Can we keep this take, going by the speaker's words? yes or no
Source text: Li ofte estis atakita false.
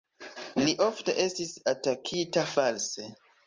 yes